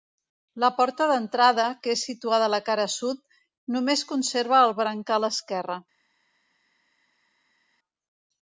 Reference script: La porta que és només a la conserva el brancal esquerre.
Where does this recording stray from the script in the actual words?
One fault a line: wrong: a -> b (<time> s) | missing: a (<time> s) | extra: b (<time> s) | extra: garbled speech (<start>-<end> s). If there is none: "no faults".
extra: d'entrada (1.1 s)
wrong: només -> situada (2.1 s)
extra: cara sud només (2.7 s)